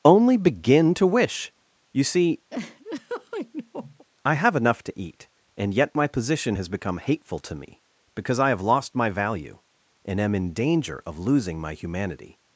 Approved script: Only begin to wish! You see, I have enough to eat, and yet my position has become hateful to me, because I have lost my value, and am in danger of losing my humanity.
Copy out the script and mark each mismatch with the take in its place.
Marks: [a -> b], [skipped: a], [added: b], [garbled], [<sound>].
Only begin to wish! You see, [laugh] I have enough to eat, and yet my position has become hateful to me, because I have lost my value, and am in danger of losing my humanity.